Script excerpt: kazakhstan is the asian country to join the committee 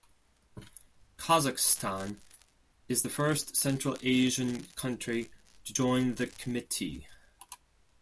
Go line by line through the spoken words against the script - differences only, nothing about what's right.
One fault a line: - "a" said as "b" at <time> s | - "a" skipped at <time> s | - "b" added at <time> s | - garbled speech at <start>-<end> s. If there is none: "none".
- "first central" added at 3.1 s